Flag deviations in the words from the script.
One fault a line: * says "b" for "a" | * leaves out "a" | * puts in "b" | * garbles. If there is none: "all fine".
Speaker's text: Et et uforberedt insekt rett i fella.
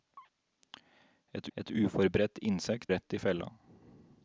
all fine